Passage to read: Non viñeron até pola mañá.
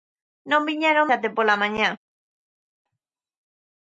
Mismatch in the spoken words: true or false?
false